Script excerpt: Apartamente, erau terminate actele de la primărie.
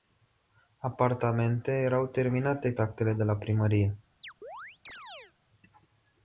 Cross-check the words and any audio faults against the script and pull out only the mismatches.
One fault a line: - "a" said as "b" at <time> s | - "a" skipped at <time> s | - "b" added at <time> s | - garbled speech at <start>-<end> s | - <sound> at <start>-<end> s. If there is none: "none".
- chirp at 4.2-5.3 s